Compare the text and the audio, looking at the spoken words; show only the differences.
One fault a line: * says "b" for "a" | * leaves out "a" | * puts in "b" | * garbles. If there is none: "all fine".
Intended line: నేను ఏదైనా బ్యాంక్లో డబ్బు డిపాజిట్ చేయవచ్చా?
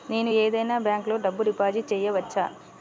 all fine